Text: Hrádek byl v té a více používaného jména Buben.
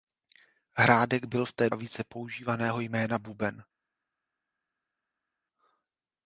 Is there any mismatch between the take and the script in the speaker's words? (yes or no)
no